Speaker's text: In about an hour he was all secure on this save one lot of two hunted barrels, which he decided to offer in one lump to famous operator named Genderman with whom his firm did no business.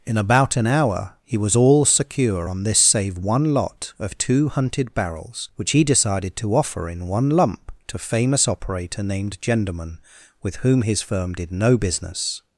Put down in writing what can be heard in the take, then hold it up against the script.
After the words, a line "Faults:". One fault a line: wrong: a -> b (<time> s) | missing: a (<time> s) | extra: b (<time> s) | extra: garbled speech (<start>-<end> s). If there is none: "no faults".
In about an hour he was all secure on this save one lot of two hunted barrels, which he decided to offer in one lump to famous operator named Genderman with whom his firm did no business.
Faults:
no faults